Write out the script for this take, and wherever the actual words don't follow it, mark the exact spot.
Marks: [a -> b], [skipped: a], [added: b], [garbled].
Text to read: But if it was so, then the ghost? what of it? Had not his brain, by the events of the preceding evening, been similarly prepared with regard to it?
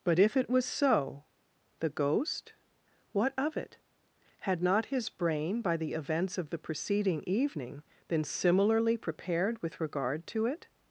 But if it was so, [skipped: then] the ghost? what of it? Had not his brain, by the events of the preceding evening, been similarly prepared with regard to it?